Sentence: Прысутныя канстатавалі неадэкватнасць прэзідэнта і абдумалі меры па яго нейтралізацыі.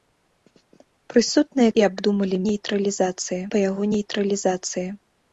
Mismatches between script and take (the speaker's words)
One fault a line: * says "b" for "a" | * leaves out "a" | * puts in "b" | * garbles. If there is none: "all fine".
* leaves out "канстатавалі неадэкватнасць прэзідэнта"
* says "нейтралізацыі" for "меры"